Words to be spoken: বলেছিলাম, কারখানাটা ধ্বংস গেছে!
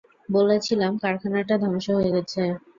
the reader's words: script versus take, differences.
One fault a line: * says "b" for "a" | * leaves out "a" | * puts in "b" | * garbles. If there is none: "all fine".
* puts in "হয়ে"